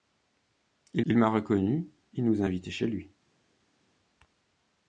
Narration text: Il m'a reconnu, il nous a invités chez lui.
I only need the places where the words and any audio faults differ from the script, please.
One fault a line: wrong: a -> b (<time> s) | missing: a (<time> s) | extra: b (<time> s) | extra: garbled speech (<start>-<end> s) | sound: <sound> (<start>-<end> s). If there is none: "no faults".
extra: il (1.1 s)